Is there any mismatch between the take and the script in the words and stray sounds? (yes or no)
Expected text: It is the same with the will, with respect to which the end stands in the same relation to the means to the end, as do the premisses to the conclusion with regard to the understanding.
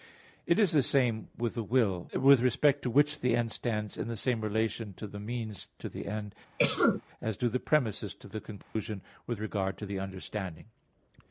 yes